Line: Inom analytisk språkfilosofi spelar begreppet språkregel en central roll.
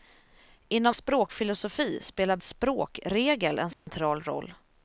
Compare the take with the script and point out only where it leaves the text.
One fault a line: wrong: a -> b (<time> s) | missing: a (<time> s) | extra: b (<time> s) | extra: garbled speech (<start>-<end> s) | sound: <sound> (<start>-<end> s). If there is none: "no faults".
missing: analytisk (0.9 s)
missing: begreppet (2.4 s)
sound: dropout (3.7-3.9 s)